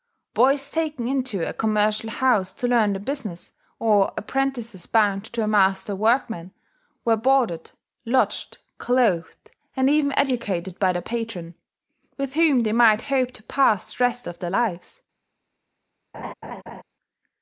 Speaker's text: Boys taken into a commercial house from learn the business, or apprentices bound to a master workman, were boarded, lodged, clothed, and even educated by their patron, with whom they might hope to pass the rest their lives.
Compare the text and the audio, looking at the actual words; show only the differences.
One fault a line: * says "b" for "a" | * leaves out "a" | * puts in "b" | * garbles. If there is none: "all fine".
* says "to" for "from"
* puts in "of"